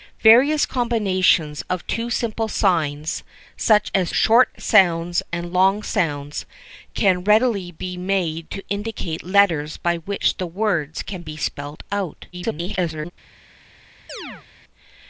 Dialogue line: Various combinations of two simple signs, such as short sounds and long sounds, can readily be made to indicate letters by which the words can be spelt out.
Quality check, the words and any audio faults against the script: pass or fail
fail